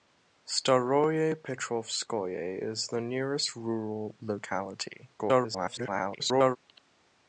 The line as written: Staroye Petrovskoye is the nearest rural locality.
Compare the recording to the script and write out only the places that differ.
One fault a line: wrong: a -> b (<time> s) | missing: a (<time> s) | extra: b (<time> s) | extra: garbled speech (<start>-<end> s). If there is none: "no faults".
extra: garbled speech (5.2-6.6 s)